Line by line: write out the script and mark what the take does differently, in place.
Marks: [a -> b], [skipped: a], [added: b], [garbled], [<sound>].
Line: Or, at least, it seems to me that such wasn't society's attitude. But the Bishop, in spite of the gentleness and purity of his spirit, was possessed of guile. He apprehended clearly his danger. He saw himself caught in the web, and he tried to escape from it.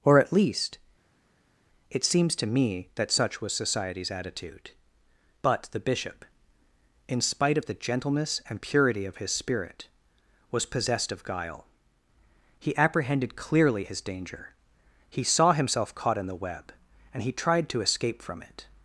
Or, at least, it seems to me that such [wasn't -> was] society's attitude. But the Bishop, in spite of the gentleness and purity of his spirit, was possessed of guile. He apprehended clearly his danger. He saw himself caught in the web, and he tried to escape from it.